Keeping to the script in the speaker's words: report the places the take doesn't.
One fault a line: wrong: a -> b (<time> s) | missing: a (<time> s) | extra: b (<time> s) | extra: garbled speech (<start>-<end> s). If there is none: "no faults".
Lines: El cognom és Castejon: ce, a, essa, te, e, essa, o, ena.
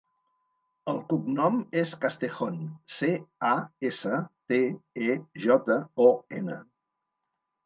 wrong: essa -> jota (5.5 s)